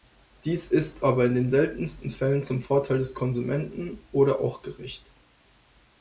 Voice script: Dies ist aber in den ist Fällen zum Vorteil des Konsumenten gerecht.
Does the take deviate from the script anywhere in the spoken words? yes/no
yes